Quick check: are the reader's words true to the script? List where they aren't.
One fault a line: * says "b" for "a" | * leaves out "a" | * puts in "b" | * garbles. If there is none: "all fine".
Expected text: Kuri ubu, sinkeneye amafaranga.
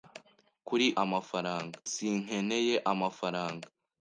* says "amafaranga" for "ubu"